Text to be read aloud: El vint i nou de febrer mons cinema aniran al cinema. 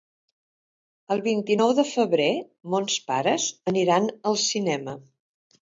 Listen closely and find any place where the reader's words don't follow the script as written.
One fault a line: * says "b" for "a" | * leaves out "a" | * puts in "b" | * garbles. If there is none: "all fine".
* says "pares" for "cinema"